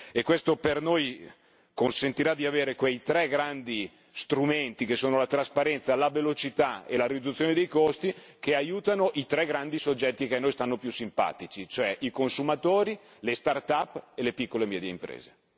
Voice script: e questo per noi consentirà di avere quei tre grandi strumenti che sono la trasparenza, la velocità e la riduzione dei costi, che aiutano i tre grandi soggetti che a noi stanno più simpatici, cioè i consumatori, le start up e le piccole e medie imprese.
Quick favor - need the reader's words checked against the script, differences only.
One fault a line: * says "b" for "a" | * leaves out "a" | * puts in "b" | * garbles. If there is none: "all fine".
all fine